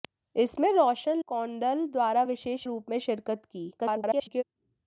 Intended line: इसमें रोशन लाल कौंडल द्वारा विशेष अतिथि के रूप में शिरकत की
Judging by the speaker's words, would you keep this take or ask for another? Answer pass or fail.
fail